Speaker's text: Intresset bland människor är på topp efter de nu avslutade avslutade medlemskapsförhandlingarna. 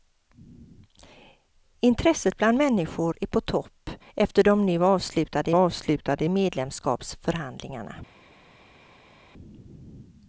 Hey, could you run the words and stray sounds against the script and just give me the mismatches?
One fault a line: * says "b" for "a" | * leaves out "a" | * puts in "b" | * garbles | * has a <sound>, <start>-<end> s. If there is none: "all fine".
all fine